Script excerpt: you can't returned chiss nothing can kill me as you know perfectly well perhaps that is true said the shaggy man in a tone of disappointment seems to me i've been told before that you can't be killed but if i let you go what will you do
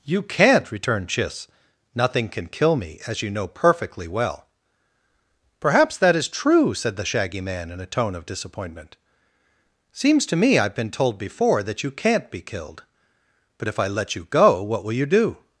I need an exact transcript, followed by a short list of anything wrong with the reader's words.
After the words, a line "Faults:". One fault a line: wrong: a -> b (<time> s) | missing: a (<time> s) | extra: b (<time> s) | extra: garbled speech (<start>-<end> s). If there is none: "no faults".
you can't returned chiss nothing can kill me as you know perfectly well perhaps that is true said the shaggy man in a tone of disappointment seems to me i've been told before that you can't be killed but if i let you go what will you do
Faults:
no faults